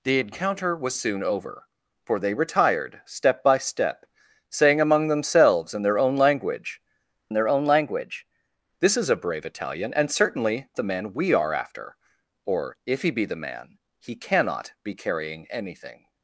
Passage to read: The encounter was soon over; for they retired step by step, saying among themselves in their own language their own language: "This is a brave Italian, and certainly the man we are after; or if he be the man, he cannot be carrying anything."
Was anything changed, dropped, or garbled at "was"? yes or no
no